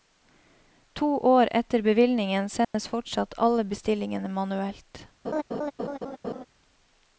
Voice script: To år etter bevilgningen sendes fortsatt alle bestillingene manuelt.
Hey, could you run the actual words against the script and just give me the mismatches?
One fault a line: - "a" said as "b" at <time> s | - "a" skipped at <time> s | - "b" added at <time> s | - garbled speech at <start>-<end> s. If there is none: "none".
none